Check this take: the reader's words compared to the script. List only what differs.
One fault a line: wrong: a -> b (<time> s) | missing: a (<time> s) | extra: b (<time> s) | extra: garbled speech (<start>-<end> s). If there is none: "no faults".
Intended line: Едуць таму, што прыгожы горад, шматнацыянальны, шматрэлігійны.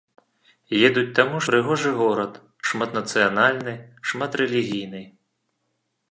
missing: што (1.4 s)